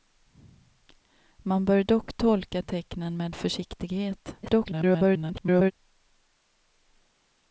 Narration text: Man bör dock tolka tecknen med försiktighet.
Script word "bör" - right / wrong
right